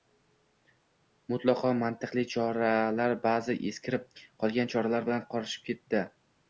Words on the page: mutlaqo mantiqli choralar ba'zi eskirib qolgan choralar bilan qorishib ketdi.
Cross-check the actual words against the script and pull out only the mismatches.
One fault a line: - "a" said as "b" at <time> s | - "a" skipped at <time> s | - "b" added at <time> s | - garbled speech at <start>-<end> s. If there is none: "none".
none